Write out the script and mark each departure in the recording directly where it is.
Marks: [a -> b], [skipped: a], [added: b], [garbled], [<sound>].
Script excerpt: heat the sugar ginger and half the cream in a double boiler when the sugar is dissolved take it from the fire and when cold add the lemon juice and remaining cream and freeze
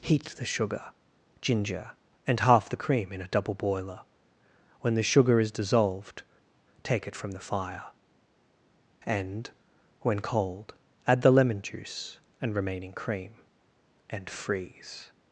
heat the sugar ginger and half the cream in a double boiler when the sugar is dissolved take it from the fire and when cold add the lemon juice and remaining cream and freeze